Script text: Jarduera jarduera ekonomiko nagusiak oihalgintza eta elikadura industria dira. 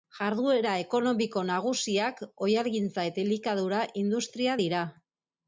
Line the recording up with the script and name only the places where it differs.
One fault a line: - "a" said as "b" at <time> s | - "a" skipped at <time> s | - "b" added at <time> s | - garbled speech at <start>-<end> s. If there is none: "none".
- "jarduera" skipped at 0.7 s